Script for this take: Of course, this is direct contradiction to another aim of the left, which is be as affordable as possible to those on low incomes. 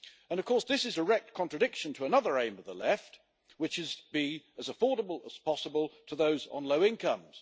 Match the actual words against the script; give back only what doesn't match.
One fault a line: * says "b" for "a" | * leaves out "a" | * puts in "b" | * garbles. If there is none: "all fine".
all fine